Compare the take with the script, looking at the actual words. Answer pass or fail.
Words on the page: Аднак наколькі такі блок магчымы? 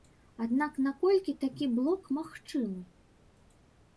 pass